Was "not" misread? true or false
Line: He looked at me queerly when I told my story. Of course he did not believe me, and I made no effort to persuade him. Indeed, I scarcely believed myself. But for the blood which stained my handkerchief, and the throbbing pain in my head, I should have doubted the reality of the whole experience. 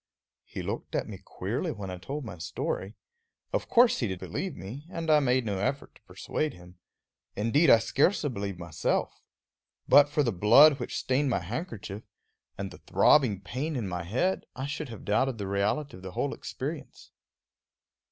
true